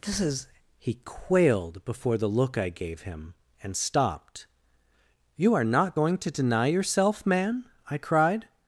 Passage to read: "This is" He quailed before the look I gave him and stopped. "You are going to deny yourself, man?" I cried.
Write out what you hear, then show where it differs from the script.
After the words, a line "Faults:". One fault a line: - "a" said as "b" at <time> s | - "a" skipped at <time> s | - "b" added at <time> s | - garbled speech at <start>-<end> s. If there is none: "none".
"This is" He quailed before the look I gave him and stopped. "You are not going to deny yourself, man?" I cried.
Faults:
- "not" added at 5.6 s